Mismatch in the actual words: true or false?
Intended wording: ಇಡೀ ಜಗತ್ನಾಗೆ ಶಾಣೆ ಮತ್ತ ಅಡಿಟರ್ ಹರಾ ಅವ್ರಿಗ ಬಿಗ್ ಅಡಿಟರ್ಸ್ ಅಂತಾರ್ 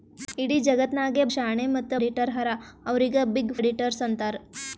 false